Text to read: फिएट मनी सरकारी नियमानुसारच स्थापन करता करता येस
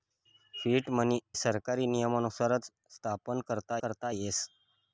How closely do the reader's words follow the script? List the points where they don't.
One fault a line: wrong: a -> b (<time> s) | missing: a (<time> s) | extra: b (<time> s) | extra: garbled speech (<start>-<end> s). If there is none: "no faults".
no faults